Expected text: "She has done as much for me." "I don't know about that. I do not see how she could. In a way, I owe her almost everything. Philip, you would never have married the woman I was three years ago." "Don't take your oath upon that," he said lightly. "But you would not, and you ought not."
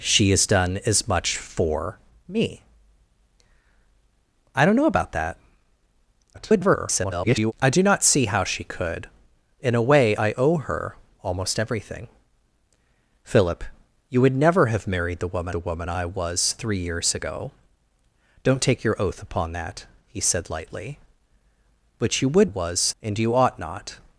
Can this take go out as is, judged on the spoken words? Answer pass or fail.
fail